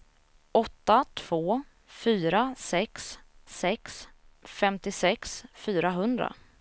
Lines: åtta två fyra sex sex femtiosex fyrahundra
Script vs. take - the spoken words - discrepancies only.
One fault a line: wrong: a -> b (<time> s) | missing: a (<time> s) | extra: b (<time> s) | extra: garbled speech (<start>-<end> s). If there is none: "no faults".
no faults